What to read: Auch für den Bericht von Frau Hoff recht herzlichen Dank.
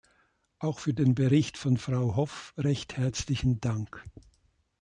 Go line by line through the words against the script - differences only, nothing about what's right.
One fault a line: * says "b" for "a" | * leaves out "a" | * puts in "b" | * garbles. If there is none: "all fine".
all fine